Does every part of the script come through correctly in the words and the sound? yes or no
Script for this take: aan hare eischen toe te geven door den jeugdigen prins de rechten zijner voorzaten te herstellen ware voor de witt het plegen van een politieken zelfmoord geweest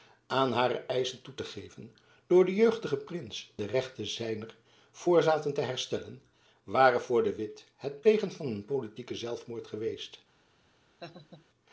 no